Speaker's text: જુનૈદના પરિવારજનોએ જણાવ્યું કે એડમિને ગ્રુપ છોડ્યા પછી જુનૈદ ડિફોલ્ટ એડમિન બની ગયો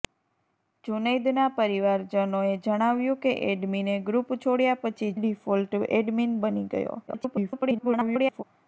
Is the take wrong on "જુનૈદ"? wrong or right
wrong